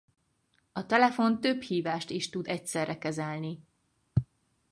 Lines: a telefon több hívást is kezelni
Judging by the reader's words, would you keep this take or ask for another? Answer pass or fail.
fail